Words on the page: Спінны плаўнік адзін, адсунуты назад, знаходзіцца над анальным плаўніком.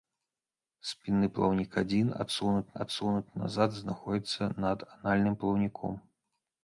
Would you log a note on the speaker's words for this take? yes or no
yes